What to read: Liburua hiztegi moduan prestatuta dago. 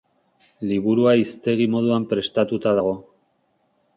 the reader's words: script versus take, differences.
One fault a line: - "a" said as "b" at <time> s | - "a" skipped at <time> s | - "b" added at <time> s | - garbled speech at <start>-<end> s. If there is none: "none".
none